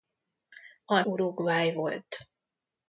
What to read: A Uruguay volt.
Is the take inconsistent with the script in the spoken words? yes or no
no